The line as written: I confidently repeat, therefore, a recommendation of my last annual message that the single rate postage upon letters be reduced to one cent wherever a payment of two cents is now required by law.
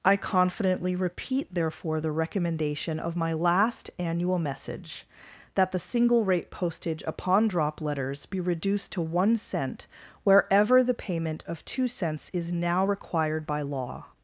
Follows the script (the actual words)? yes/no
no